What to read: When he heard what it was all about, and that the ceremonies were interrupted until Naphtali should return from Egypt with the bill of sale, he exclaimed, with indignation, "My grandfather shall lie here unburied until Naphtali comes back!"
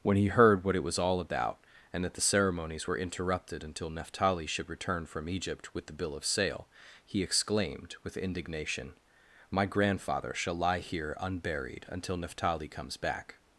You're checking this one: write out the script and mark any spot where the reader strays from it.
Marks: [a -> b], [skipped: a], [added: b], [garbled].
When he heard what it was all about, and that the ceremonies were interrupted until Naphtali should return from Egypt with the bill of sale, he exclaimed, with indignation, "My grandfather shall lie here unburied until Naphtali comes back!"